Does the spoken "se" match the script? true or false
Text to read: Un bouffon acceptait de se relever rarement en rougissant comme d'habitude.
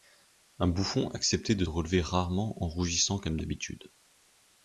false